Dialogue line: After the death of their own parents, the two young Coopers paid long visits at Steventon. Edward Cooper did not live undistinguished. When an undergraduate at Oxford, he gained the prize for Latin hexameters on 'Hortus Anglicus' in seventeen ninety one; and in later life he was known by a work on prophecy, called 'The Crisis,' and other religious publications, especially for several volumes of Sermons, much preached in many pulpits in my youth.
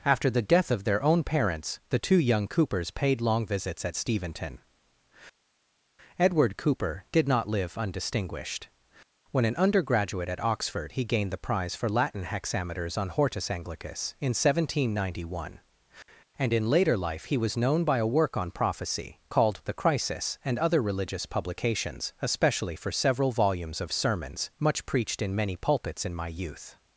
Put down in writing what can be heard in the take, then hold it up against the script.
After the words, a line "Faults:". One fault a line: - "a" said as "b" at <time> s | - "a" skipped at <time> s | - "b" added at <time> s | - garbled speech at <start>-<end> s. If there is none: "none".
After the death of their own parents, the two young Coopers paid long visits at Steventon. Edward Cooper did not live undistinguished. When an undergraduate at Oxford, he gained the prize for Latin hexameters on 'Hortus Anglicus' in seventeen ninety one; and in later life he was known by a work on prophecy, called 'The Crisis,' and other religious publications, especially for several volumes of Sermons, much preached in many pulpits in my youth.
Faults:
none